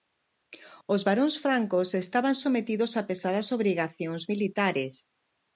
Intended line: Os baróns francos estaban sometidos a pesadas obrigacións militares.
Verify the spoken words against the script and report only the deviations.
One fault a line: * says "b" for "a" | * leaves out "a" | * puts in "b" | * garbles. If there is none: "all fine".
all fine